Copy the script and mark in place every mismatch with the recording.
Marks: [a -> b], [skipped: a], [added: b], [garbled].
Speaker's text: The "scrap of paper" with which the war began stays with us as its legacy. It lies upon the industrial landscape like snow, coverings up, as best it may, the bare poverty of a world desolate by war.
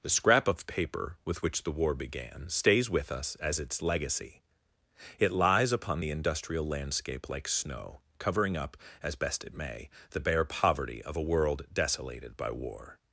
The "scrap of paper" with which the war began stays with us as its legacy. It lies upon the industrial landscape like snow, [coverings -> covering] up, as best it may, the bare poverty of a world [desolate -> desolated] by war.